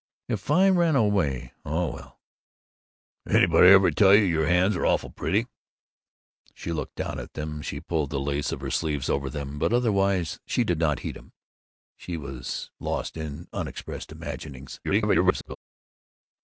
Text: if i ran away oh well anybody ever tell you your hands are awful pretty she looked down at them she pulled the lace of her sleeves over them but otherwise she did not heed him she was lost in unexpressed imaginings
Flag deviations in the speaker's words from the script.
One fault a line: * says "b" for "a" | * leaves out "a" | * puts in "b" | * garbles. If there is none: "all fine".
* garbles